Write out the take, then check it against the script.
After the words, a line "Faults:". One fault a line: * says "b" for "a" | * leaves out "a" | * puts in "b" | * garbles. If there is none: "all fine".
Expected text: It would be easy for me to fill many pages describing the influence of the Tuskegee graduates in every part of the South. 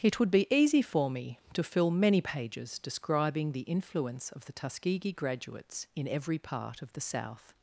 It would be easy for me to fill many pages describing the influence of the Tuskegee graduates in every part of the South.
Faults:
all fine